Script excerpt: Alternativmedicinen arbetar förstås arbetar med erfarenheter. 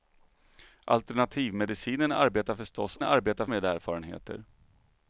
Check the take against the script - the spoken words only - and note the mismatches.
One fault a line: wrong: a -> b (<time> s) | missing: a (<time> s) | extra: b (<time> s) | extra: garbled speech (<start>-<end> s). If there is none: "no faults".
no faults